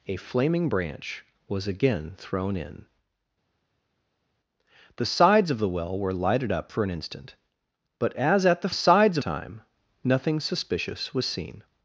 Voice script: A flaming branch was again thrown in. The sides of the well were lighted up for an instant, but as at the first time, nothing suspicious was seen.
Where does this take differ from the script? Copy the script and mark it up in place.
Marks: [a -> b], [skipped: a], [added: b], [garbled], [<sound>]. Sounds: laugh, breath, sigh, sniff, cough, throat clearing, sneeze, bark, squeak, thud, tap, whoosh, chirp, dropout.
A flaming branch was again thrown in. The sides of the well were lighted up for an instant, but as at the [first -> sides] time, nothing suspicious was seen.